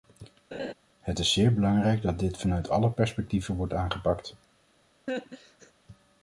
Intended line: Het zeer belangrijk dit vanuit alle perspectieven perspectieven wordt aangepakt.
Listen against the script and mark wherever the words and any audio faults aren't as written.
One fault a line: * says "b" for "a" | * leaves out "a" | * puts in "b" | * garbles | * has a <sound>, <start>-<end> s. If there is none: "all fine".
* has a laugh, 0.5-0.7 s
* puts in "is"
* puts in "dat"
* leaves out "perspectieven"
* has a laugh, 5.1-5.7 s